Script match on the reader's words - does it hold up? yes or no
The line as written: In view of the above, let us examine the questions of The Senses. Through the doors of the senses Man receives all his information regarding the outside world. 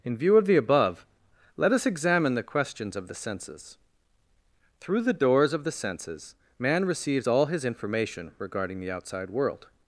yes